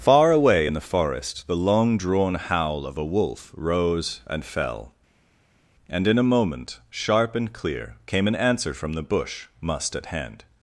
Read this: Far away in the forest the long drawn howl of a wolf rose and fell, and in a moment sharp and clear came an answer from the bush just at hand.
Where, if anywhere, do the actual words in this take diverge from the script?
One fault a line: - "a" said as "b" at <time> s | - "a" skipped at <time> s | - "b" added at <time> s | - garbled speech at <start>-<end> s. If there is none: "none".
- "just" said as "must" at 9.6 s